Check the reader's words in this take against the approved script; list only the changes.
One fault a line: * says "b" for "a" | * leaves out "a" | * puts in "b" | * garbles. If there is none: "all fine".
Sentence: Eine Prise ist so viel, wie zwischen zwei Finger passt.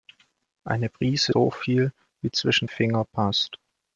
* leaves out "ist"
* leaves out "zwei"